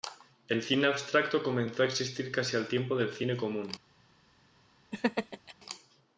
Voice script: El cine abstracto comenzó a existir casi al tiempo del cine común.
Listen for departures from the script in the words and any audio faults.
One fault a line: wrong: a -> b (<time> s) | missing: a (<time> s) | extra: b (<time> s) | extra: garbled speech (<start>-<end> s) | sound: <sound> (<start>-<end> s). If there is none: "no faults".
sound: laugh (4.9-5.5 s)